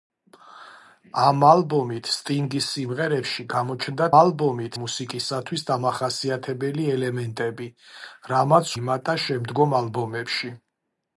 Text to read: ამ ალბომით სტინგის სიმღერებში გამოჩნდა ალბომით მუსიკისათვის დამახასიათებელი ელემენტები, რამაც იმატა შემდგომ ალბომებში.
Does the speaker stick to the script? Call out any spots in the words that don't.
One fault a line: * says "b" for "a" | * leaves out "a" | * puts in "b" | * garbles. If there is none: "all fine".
all fine